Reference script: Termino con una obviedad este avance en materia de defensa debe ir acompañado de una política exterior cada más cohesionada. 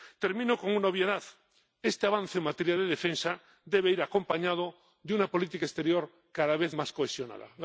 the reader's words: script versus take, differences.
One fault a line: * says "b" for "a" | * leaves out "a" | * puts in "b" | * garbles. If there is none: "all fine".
* puts in "vez"